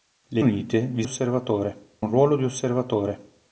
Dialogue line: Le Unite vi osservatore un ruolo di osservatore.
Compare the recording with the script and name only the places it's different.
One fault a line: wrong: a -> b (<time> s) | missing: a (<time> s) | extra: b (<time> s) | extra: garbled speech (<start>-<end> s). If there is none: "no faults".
no faults